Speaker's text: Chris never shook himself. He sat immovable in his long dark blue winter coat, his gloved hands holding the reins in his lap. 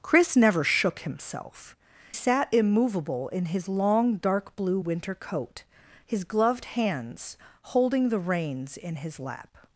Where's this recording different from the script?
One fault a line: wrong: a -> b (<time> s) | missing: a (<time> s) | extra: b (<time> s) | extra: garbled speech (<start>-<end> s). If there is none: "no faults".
missing: He (1.8 s)